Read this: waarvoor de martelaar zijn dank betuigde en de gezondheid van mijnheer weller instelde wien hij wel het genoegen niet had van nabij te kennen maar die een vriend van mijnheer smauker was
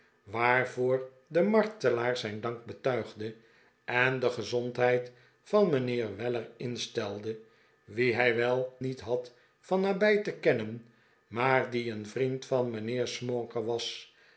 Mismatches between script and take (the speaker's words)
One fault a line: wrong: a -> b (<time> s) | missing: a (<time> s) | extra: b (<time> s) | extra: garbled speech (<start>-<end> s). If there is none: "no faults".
missing: het genoegen (8.8 s)